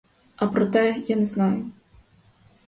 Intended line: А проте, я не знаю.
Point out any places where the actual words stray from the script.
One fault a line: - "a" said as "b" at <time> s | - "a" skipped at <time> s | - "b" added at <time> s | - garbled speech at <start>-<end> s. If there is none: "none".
none